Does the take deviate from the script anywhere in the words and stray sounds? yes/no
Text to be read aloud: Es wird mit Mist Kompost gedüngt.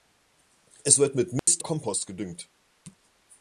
yes